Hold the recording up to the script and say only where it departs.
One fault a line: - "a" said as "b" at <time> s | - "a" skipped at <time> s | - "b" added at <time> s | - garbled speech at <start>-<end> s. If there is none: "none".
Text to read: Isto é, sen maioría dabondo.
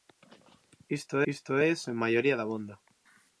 - "isto" added at 1.3 s